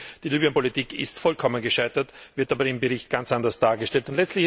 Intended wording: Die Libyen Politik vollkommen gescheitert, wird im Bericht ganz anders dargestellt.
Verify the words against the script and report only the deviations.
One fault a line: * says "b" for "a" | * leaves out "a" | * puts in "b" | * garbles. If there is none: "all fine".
* puts in "ist"
* puts in "aber"